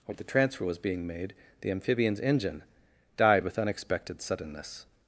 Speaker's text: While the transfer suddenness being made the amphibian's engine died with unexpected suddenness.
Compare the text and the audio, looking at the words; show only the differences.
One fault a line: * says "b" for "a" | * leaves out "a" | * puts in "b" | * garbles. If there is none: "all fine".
* says "was" for "suddenness"